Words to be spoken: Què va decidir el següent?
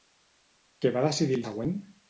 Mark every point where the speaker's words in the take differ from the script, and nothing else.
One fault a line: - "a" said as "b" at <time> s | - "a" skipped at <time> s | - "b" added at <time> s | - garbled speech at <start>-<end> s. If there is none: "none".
none